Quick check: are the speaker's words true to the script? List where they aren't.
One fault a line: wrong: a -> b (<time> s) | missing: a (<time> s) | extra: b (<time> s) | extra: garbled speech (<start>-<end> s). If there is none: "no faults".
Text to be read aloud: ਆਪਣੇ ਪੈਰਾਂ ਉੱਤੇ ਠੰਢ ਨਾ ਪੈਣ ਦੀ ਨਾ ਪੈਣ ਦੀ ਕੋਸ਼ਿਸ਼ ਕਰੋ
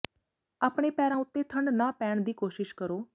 missing: ਨਾ ਪੈਣ ਦੀ (2.3 s)